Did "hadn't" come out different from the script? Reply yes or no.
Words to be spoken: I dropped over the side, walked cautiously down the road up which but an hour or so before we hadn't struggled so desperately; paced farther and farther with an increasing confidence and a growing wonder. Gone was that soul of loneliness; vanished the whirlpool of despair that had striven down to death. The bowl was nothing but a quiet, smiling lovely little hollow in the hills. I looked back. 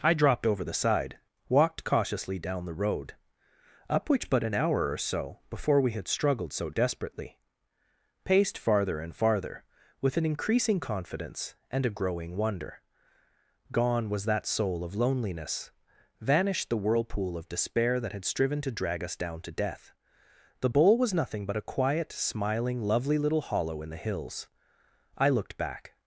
yes